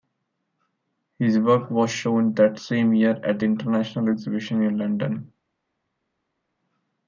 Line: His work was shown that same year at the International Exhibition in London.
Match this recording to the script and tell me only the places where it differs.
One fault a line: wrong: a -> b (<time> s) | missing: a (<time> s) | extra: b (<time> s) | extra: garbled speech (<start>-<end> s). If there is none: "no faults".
no faults